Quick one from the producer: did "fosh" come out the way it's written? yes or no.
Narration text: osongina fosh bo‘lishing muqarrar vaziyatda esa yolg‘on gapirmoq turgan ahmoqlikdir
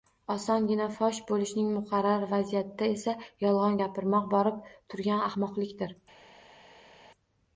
yes